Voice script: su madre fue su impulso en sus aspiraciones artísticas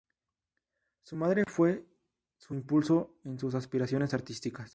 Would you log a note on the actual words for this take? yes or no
no